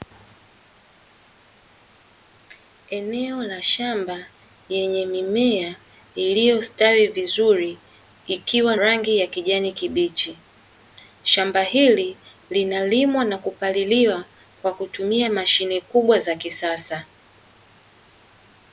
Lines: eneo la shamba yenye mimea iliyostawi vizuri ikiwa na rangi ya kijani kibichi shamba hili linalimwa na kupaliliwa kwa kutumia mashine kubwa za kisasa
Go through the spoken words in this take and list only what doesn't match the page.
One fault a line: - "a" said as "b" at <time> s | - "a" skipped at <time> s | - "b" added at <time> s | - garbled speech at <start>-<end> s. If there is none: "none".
- "na" skipped at 8.8 s